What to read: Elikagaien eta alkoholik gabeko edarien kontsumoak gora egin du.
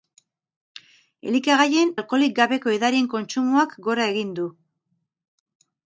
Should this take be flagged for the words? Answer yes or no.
yes